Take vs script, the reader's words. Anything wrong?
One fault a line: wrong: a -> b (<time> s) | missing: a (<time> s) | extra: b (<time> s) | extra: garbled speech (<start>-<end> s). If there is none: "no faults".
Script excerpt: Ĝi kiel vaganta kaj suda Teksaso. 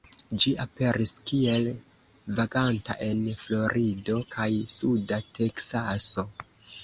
extra: aperis (0.6 s)
extra: en Florido (3.1 s)